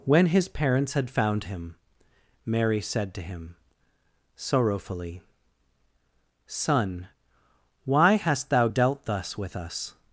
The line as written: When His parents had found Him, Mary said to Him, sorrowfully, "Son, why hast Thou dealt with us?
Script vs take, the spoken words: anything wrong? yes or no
yes